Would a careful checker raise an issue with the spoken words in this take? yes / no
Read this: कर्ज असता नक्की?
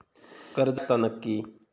no